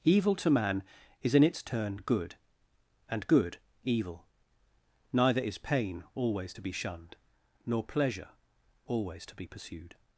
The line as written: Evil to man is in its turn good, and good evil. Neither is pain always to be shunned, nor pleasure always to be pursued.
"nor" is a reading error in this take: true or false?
false